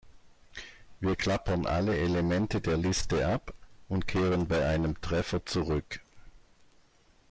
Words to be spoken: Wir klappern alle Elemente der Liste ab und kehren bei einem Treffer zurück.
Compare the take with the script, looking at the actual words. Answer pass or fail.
pass